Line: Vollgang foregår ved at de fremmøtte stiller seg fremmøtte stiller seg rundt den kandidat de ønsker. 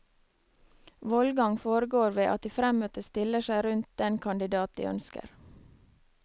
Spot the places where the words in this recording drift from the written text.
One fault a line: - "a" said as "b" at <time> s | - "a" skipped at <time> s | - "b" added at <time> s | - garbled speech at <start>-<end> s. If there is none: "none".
- "fremmøtte stiller seg" skipped at 3.6 s